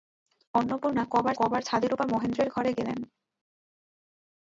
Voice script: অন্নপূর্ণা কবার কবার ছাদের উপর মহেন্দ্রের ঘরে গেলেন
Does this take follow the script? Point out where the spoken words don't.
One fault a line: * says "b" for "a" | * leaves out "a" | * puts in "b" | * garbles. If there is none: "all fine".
all fine